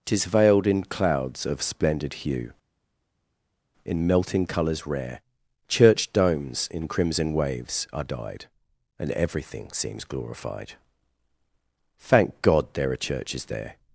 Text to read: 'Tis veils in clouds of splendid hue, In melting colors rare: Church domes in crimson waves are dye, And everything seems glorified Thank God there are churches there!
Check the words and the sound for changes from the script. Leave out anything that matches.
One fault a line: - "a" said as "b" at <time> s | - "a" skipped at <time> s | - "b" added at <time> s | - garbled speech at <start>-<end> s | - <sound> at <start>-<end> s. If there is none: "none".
- "veils" said as "veiled" at 0.2 s
- "dye" said as "dyed" at 8.0 s